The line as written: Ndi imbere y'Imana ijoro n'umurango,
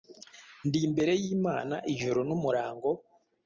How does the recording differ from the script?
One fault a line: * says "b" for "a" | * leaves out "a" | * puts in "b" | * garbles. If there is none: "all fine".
all fine